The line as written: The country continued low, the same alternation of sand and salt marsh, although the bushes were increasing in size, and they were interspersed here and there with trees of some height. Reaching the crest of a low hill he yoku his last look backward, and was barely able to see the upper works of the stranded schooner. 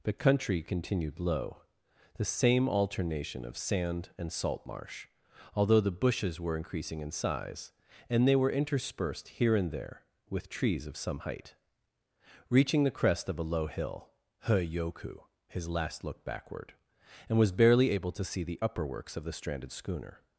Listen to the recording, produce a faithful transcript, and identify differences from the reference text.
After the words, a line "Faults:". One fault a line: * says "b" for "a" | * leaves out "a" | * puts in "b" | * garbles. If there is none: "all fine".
The country continued low, the same alternation of sand and salt marsh, although the bushes were increasing in size, and they were interspersed here and there with trees of some height. Reaching the crest of a low hill he yoku his last look backward, and was barely able to see the upper works of the stranded schooner.
Faults:
all fine